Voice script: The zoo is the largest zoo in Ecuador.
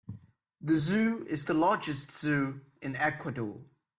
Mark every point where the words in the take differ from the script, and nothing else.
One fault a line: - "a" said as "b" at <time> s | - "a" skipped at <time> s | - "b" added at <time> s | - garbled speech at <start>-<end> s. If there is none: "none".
none